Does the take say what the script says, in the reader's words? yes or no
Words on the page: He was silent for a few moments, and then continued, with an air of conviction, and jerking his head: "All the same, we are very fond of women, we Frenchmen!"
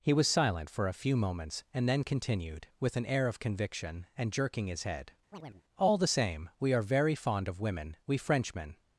yes